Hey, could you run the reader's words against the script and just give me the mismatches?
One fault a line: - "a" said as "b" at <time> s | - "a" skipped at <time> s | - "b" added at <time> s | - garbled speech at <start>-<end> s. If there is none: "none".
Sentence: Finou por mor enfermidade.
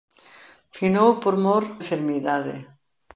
none